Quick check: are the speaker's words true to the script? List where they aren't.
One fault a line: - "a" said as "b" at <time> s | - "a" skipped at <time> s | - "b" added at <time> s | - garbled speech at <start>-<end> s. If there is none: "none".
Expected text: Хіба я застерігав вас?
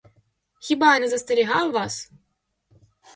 - "не" added at 1.0 s